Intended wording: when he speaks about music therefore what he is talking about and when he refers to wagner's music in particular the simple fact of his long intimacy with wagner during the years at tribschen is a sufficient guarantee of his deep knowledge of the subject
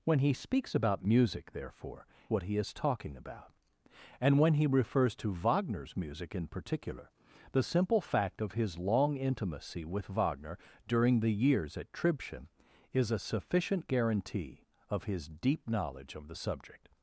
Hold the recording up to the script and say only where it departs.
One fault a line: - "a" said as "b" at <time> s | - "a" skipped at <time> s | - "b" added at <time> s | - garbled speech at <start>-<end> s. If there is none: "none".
none